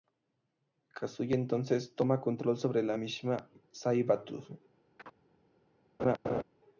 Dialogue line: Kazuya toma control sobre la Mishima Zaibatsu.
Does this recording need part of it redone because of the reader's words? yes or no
yes